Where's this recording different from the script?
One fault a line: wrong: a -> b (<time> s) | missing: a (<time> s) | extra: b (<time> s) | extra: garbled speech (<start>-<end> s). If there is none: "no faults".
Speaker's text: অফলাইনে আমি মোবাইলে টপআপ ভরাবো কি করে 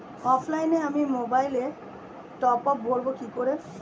no faults